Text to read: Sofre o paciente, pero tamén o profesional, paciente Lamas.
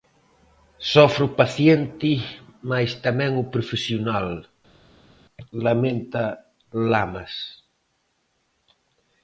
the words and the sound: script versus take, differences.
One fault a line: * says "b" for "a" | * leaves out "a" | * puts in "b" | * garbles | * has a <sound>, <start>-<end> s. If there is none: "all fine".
* says "mais" for "pero"
* says "lamenta" for "paciente"